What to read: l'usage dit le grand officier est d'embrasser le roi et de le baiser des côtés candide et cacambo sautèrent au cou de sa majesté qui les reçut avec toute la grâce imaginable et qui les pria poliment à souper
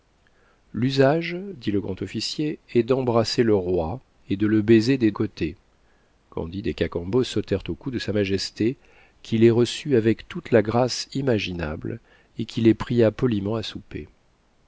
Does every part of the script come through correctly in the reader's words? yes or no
yes